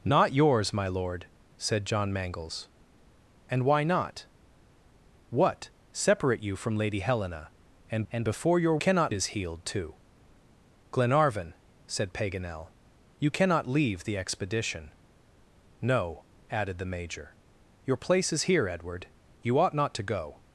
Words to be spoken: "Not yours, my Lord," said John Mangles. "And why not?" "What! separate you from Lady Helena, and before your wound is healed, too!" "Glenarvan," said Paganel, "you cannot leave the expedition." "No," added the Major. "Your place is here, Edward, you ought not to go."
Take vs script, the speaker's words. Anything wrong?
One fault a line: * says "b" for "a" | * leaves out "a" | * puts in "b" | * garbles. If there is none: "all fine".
* puts in "and"
* says "cannot" for "wound"